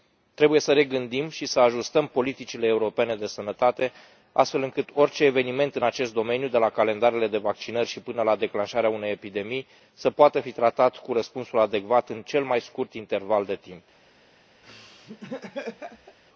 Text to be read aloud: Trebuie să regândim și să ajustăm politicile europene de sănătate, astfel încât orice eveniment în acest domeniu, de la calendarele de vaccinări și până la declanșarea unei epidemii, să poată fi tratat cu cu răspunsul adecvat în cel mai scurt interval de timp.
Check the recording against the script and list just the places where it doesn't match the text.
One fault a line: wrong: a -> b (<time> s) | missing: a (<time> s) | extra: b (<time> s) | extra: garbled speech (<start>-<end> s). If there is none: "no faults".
missing: cu (11.1 s)